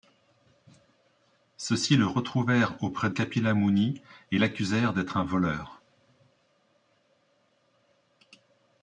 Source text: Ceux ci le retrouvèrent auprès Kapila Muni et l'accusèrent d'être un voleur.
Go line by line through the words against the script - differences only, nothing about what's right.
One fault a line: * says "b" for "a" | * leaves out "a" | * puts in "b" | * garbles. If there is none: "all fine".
all fine